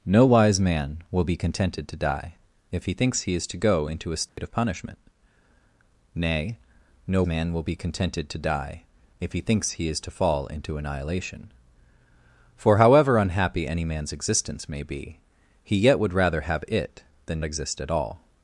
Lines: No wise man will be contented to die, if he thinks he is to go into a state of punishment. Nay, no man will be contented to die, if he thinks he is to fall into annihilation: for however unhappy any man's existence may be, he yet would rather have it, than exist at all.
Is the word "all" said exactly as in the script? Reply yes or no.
yes